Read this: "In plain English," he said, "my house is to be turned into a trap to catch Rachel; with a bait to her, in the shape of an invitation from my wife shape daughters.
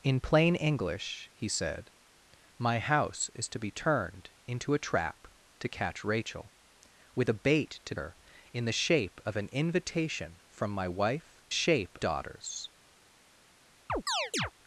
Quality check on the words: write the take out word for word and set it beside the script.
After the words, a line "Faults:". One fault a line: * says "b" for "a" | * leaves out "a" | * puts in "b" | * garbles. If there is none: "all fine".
"In plain English," he said, "my house is to be turned into a trap to catch Rachel; with a bait to her, in the shape of an invitation from my wife shape daughters.
Faults:
all fine